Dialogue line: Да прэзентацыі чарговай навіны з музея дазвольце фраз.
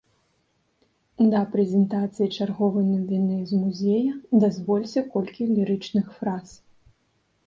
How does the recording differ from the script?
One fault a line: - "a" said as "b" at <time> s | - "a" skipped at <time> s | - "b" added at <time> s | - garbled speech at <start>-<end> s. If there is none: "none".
- "колькі лірычных" added at 5.2 s